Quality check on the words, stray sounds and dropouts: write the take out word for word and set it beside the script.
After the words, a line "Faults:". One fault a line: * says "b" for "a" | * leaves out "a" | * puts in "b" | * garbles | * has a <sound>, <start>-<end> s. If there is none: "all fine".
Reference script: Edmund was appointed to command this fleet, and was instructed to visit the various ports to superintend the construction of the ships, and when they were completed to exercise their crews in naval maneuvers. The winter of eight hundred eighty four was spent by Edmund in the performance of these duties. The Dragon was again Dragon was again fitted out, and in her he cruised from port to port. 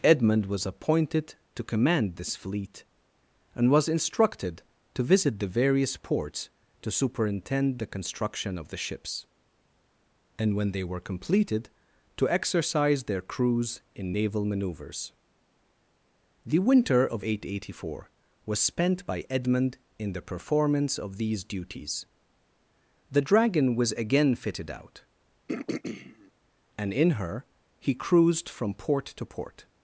Edmund was appointed to command this fleet, and was instructed to visit the various ports to superintend the construction of the ships, and when they were completed to exercise their crews in naval maneuvers. The winter of eight hundred eighty four was spent by Edmund in the performance of these duties. The Dragon was again fitted out, and in her he cruised from port to port.
Faults:
* leaves out "Dragon was again"
* has a throat clearing, 25.5-26.3 s